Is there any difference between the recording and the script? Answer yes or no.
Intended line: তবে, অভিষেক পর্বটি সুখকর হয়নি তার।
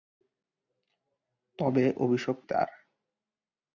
yes